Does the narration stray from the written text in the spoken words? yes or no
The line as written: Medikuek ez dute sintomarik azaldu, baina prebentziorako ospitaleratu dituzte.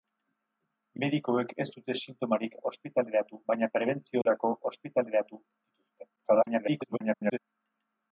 yes